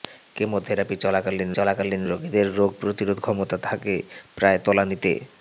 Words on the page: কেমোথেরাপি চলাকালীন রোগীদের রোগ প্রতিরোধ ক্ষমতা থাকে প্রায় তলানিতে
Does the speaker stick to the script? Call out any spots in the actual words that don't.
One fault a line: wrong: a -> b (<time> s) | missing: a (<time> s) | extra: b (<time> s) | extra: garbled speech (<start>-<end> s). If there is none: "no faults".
extra: চলাকালীন (1.6 s)